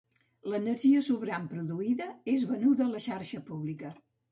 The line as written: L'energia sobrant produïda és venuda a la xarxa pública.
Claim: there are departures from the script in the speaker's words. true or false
false